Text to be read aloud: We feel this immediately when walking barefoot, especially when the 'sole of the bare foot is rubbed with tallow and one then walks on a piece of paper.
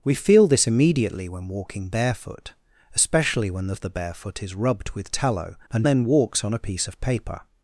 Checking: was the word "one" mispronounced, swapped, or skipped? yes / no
yes